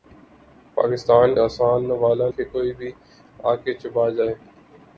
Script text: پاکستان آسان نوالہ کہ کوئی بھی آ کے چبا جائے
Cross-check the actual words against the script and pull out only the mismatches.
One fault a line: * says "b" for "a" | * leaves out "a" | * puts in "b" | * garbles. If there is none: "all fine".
all fine